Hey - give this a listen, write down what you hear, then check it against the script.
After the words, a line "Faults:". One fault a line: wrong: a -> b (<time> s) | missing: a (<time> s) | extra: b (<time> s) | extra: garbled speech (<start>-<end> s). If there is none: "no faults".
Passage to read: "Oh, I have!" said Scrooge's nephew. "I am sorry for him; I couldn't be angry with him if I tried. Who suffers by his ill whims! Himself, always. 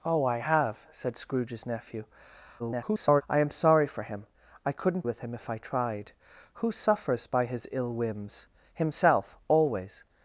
"Oh, I have!" said Scrooge's nephew. [garbled] "I am sorry for him; I couldn't with him if I tried. Who suffers by his ill whims! Himself, always.
Faults:
extra: garbled speech (2.6-3.2 s)
missing: be angry (5.0 s)